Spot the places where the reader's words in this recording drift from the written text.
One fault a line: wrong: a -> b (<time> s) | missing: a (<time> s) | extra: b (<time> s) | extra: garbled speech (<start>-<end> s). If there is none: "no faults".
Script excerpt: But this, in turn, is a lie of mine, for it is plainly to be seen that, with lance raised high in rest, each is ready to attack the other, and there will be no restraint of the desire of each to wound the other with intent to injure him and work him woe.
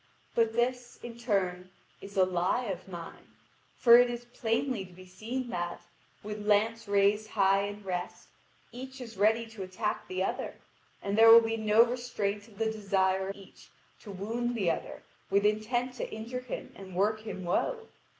missing: of (13.3 s)